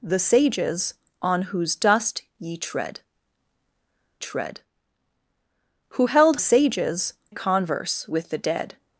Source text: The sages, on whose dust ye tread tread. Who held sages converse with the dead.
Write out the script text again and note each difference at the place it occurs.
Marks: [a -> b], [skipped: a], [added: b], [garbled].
The sages, on whose dust ye tread tread. Who held sages converse with the dead.